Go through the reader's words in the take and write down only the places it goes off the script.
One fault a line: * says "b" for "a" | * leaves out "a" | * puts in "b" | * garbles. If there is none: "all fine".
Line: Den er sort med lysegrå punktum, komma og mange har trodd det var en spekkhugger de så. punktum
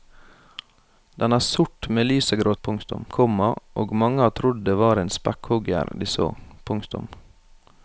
all fine